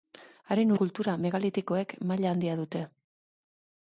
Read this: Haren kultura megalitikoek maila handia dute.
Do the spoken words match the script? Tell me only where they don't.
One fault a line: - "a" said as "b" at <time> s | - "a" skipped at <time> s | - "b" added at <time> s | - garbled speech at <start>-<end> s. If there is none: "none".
none